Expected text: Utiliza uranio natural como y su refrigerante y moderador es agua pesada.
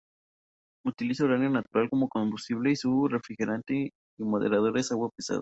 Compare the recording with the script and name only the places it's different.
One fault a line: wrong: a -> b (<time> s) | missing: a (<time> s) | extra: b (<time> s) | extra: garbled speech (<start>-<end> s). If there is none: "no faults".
extra: combustible (2.1 s)